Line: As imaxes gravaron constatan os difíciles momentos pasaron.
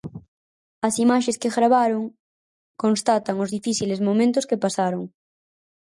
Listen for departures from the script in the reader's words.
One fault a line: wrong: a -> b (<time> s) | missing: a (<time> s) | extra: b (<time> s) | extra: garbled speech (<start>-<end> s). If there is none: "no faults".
extra: que (1.4 s)
extra: que (4.5 s)